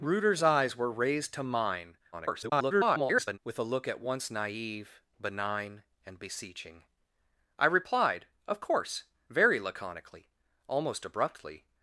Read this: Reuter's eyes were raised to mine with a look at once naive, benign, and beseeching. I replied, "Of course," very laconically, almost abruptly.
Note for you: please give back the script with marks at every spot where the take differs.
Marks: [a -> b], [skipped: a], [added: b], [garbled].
Reuter's eyes were raised to mine [garbled] with a look at once naive, benign, and beseeching. I replied, "Of course," very laconically, almost abruptly.